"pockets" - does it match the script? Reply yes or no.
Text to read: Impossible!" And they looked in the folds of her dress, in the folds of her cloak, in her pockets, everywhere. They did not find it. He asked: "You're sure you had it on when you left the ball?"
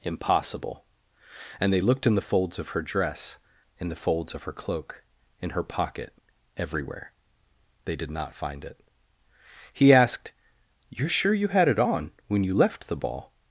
no